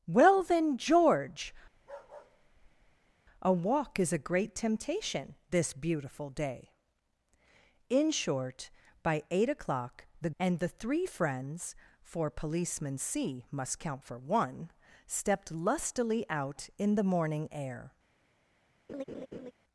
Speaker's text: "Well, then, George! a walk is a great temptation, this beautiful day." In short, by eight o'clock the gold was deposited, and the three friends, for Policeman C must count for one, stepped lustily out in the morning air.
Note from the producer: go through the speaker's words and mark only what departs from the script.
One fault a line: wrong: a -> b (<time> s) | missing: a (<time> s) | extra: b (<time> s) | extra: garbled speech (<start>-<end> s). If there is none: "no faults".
missing: gold was deposited (10.3 s)